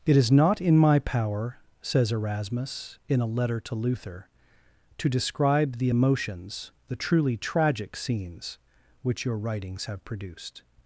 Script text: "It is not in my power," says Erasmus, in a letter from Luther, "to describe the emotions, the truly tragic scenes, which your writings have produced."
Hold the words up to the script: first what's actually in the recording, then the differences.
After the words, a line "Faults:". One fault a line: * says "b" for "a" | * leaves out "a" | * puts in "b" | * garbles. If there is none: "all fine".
"It is not in my power," says Erasmus, in a letter to Luther, "to describe the emotions, the truly tragic scenes, which your writings have produced."
Faults:
* says "to" for "from"